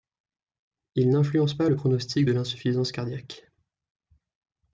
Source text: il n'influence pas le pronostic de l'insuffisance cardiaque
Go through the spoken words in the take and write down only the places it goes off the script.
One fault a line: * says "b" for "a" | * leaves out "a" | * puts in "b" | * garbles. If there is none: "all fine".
all fine